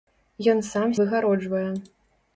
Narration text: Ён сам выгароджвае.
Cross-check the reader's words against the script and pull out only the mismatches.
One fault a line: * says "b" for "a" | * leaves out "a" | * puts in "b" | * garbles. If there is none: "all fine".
all fine